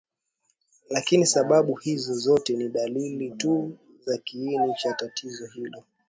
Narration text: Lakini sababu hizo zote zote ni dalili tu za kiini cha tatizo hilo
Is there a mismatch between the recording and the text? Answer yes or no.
yes